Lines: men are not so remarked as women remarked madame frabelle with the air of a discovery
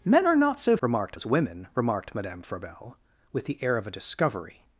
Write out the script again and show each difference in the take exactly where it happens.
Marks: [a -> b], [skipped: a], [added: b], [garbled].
men are not so remarked as women remarked madame frabelle with the air of a discovery